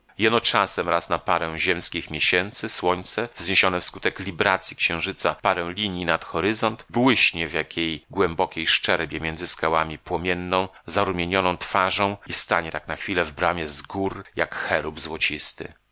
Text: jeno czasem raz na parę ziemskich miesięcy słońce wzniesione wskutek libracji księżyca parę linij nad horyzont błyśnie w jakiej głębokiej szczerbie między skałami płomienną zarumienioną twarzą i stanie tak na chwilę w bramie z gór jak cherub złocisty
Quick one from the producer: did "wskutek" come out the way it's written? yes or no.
yes